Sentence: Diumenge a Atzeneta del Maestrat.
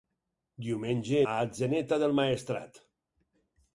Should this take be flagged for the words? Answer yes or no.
no